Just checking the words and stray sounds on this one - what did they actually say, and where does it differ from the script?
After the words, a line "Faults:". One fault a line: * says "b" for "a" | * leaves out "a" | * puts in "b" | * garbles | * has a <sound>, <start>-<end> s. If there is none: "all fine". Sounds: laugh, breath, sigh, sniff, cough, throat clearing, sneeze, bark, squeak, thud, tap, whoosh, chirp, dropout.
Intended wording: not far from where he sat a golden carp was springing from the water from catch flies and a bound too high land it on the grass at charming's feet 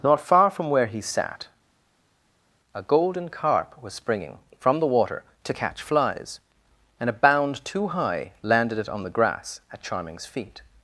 not far from where he sat a golden carp was springing from the water to catch flies and a bound too high landed it on the grass at charming's feet
Faults:
* says "to" for "from"
* says "landed" for "land"